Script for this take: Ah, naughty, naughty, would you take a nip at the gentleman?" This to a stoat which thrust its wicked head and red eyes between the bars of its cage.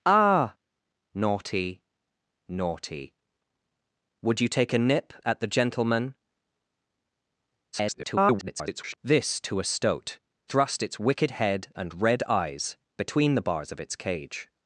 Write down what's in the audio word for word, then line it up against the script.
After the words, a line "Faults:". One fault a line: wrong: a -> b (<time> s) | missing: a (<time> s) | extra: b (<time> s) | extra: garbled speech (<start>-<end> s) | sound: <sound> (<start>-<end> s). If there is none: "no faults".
Ah, naughty, naughty, would you take a nip at the gentleman?" [garbled] This to a stoat thrust its wicked head and red eyes between the bars of its cage.
Faults:
extra: garbled speech (7.7-9.0 s)
missing: which (10.2 s)